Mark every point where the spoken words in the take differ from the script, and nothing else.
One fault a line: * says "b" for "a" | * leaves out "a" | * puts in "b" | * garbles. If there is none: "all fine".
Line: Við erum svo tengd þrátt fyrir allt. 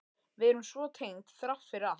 all fine